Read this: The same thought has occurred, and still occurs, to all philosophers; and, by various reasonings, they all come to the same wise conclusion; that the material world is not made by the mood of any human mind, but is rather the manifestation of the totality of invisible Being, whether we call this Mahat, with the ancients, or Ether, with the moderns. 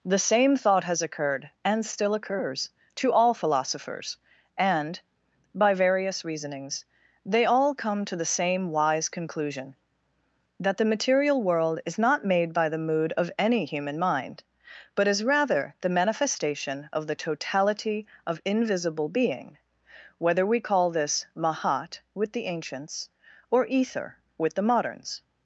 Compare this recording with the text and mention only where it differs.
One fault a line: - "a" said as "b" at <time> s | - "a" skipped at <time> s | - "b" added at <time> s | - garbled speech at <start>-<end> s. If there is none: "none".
none